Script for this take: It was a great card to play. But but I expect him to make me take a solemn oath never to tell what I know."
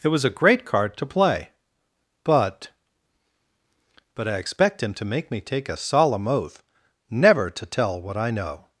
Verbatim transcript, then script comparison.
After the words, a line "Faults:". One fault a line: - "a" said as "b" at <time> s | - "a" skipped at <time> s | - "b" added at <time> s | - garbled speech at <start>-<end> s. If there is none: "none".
It was a great card to play. But but I expect him to make me take a solemn oath never to tell what I know."
Faults:
none